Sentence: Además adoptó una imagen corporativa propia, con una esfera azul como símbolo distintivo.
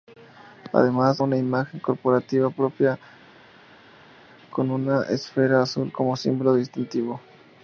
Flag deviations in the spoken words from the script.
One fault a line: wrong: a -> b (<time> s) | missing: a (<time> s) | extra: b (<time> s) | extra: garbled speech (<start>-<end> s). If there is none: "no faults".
missing: adoptó (1.2 s)